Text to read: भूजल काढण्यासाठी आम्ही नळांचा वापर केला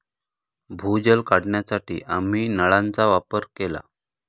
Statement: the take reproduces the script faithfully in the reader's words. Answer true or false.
true